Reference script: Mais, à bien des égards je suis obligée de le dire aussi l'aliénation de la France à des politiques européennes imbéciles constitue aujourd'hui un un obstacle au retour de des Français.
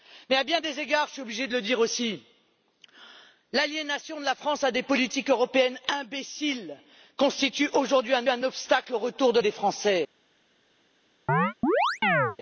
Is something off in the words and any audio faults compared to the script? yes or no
yes